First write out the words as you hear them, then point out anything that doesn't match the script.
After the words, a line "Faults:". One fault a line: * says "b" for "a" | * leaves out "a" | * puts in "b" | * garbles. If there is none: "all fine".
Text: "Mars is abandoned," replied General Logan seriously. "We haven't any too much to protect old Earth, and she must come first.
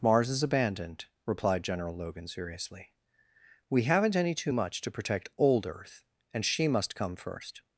"Mars is abandoned," replied General Logan seriously. "We haven't any too much to protect old Earth, and she must come first.
Faults:
all fine